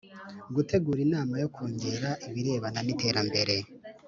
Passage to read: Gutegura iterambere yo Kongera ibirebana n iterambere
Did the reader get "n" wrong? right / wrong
right